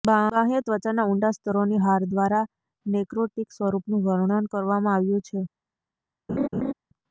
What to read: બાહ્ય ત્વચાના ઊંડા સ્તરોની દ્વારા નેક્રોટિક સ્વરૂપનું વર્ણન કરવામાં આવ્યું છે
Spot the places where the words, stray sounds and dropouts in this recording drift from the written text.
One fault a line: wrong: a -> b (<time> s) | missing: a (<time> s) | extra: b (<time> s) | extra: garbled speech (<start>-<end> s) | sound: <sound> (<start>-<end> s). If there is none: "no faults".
extra: હાર (1.8 s)
sound: laugh (6.3-6.7 s)